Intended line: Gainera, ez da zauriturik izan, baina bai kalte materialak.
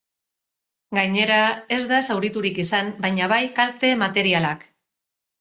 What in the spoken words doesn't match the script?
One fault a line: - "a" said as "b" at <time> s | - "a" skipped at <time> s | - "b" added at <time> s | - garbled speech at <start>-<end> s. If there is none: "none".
none